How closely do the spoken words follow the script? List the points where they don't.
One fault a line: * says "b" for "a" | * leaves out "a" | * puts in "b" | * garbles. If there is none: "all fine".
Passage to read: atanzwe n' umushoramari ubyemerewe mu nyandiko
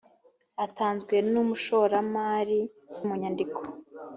* leaves out "ubyemerewe"